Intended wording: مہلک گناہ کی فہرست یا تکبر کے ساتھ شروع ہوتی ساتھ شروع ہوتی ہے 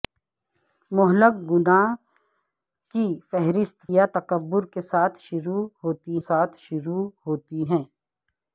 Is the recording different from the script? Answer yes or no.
no